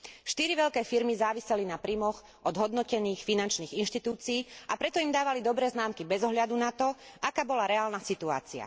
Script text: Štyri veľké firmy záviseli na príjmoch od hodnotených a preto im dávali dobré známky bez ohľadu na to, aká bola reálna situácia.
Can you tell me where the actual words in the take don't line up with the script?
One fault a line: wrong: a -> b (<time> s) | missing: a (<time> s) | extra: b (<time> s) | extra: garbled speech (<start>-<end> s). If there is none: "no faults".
extra: finančných inštitúcií (3.2 s)